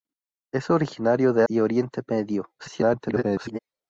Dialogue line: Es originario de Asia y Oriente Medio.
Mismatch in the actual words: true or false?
true